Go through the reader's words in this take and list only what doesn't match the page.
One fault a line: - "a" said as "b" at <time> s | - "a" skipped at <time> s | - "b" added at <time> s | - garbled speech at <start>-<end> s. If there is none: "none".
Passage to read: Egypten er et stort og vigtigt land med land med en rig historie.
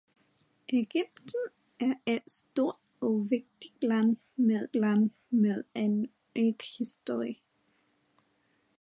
none